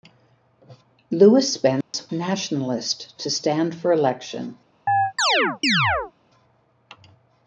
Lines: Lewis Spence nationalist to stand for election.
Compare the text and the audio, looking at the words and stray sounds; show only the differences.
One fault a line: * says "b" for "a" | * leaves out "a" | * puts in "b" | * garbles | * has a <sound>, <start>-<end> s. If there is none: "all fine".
* has a dropout, 1.8-1.9 s
* has a chirp, 4.9-6.1 s